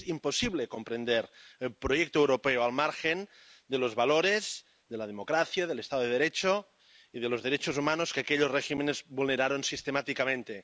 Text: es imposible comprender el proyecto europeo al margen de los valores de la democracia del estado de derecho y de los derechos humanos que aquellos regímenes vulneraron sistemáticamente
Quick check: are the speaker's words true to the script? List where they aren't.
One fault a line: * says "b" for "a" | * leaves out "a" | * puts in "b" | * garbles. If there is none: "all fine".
all fine